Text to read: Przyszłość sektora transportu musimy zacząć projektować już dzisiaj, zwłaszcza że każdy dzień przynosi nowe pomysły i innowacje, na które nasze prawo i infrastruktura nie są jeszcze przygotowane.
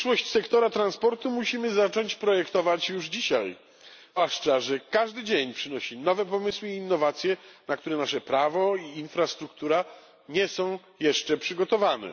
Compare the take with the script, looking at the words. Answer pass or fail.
pass